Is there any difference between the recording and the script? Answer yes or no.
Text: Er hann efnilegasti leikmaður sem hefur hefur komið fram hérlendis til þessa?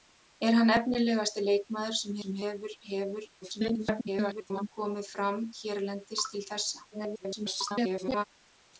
yes